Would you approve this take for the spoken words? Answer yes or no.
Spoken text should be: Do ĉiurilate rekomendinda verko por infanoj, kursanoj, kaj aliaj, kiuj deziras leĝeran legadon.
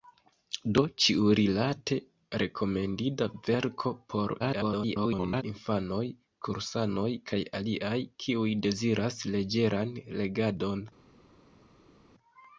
no